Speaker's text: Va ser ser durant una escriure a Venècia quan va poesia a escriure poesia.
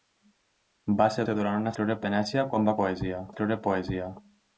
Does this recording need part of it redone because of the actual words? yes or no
no